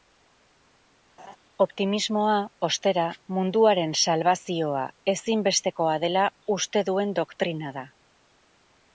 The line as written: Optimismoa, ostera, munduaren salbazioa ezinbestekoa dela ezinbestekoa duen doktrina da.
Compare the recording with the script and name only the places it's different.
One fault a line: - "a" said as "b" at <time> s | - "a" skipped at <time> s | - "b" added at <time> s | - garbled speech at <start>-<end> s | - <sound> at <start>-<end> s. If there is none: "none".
- laugh at 1.2-1.4 s
- "ezinbestekoa" said as "uste" at 6.6 s